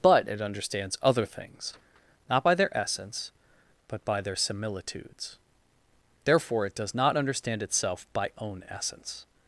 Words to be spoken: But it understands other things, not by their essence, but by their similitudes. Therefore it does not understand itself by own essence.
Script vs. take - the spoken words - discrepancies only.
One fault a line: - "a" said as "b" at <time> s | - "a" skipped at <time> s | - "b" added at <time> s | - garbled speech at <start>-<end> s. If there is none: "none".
none